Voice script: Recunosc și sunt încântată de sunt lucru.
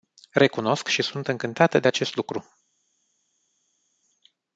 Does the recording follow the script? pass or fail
fail